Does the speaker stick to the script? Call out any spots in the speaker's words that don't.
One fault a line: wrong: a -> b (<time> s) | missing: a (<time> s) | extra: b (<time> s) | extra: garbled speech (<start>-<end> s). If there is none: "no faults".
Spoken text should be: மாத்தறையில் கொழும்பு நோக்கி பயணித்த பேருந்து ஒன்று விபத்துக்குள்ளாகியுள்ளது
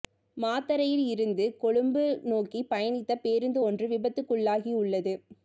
extra: இருந்து (1.1 s)